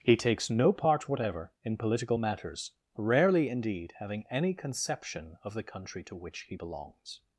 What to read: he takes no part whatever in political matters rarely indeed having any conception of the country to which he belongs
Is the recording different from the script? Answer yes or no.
no